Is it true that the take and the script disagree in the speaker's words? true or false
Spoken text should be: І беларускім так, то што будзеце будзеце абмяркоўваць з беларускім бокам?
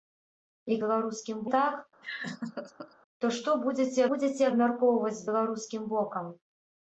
false